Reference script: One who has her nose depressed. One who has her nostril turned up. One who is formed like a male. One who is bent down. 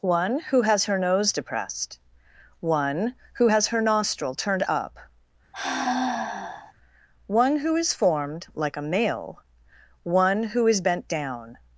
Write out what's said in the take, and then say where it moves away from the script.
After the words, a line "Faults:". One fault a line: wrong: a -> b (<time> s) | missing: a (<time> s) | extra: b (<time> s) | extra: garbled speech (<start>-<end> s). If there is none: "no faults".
One who has her nose depressed. One who has her nostril turned up. One who is formed like a male. One who is bent down.
Faults:
no faults